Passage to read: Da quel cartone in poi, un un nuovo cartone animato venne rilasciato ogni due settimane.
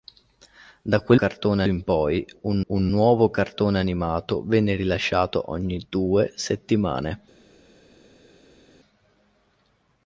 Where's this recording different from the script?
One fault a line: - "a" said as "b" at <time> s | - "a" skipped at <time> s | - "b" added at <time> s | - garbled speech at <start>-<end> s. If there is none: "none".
none